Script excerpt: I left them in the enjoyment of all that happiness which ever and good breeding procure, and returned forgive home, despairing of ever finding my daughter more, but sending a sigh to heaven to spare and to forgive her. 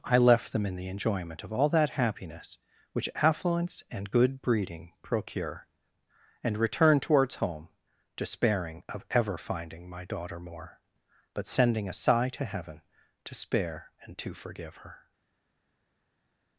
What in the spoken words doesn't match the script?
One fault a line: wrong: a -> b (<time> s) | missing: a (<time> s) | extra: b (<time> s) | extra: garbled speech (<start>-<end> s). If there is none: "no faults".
wrong: ever -> affluence (3.1 s)
wrong: forgive -> towards (7.0 s)